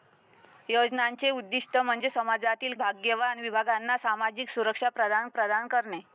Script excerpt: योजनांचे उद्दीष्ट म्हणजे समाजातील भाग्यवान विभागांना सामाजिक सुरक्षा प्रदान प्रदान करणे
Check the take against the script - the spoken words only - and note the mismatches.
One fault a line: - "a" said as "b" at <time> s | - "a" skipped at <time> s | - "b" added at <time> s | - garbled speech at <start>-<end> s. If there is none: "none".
none